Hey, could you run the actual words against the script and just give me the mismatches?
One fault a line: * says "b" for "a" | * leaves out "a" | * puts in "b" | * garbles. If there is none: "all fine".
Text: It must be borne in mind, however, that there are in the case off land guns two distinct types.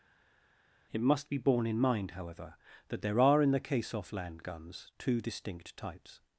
all fine